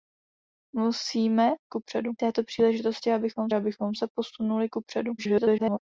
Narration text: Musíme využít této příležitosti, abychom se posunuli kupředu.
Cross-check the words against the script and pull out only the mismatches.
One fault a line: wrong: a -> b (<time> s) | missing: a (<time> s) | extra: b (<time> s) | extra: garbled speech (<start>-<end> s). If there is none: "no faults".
wrong: využít -> kupředu (1.7 s)
extra: abychom (3.5 s)
extra: garbled speech (5.2-5.8 s)